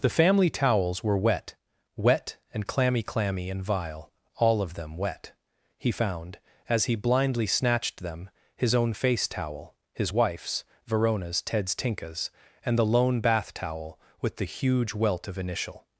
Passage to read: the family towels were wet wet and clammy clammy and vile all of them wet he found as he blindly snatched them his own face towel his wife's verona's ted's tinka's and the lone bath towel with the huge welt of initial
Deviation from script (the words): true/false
false